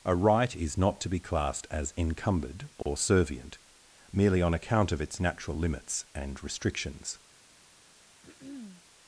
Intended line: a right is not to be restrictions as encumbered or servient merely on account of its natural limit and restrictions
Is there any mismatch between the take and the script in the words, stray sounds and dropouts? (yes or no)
yes